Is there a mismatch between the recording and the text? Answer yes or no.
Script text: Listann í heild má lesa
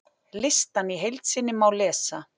yes